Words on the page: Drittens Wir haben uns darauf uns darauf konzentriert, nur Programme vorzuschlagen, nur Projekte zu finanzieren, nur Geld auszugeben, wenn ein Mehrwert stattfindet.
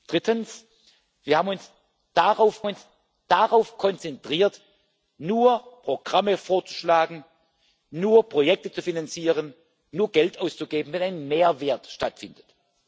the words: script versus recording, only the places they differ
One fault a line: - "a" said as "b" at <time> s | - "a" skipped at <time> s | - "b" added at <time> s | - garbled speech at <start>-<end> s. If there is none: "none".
none